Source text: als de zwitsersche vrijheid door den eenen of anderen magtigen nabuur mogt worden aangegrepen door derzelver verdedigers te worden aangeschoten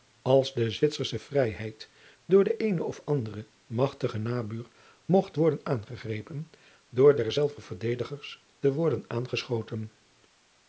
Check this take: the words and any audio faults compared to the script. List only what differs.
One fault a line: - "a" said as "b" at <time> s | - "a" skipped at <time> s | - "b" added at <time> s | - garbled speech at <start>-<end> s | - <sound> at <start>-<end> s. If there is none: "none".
none